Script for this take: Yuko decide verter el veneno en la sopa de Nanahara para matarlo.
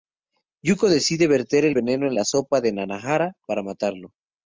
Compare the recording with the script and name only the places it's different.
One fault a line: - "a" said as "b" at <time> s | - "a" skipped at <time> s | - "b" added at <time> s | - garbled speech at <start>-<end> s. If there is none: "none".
none